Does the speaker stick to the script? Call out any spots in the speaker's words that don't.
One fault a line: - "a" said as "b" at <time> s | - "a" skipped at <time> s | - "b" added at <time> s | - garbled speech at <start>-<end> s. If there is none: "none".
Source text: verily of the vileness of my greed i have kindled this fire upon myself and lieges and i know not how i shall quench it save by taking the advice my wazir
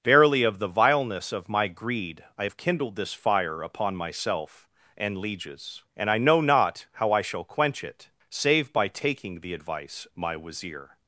none